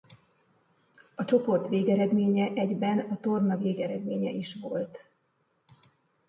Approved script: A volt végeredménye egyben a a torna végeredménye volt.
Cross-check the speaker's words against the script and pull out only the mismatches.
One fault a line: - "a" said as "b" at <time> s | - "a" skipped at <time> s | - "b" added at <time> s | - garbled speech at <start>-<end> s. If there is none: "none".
- "volt" said as "csoport" at 1.2 s
- "a" skipped at 3.2 s
- "is" added at 4.3 s